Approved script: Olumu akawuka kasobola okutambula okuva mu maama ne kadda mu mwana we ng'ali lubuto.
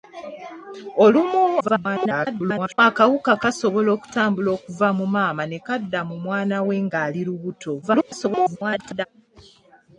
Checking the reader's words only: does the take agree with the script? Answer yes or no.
no